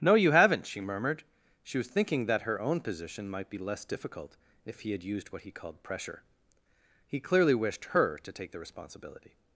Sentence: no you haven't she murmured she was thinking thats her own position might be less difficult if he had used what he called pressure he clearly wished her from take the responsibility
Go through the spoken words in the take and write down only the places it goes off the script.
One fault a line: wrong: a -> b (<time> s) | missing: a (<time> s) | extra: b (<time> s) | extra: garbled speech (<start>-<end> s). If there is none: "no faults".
wrong: thats -> that (2.2 s)
wrong: from -> to (8.2 s)